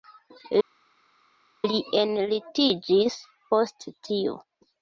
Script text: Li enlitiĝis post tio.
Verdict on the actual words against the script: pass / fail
pass